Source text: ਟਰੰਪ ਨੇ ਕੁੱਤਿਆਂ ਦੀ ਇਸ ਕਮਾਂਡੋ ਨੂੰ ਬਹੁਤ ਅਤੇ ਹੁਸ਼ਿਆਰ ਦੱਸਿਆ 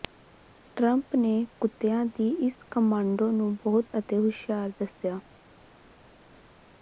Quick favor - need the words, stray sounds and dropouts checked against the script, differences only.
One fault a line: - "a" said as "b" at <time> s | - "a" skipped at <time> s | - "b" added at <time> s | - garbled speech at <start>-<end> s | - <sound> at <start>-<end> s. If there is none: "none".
none